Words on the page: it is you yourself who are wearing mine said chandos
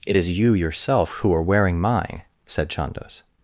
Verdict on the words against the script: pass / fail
pass